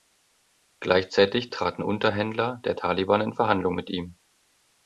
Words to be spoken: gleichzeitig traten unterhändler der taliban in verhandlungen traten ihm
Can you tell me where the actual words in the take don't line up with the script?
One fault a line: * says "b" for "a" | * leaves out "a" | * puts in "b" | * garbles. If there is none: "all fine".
* says "mit" for "traten"